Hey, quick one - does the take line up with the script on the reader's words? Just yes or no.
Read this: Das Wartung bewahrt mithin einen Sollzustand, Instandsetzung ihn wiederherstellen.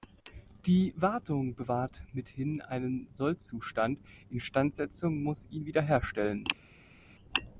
no